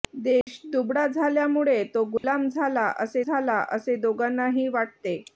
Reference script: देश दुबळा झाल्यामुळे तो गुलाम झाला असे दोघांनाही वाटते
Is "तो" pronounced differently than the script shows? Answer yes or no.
no